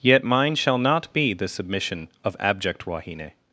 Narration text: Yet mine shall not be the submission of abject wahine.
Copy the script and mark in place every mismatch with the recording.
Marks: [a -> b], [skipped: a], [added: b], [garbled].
Yet mine shall not be the submission of abject wahine.